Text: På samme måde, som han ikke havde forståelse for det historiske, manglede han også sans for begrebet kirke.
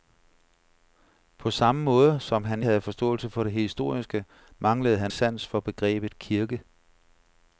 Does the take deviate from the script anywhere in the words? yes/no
yes